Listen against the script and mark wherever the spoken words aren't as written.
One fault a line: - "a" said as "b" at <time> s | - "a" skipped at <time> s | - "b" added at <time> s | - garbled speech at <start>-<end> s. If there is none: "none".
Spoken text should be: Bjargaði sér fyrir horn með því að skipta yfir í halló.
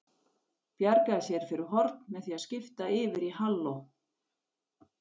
none